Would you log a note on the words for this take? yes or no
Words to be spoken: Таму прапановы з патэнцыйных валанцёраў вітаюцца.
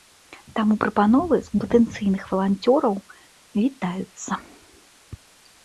no